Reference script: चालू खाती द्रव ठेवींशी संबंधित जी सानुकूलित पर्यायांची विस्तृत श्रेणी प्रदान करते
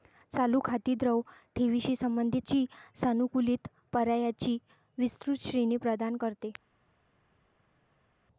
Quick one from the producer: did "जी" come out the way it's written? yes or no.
yes